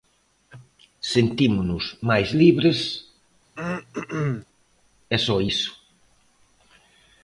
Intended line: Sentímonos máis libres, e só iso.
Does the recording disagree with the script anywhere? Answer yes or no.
no